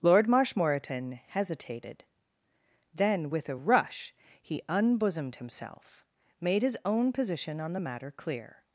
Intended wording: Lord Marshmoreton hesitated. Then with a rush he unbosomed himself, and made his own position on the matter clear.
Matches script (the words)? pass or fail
fail